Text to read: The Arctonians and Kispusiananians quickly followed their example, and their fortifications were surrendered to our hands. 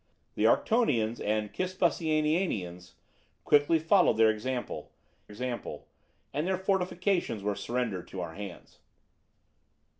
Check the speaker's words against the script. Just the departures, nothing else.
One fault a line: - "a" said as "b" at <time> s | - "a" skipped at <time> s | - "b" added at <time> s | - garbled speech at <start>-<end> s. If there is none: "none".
- "example" added at 5.3 s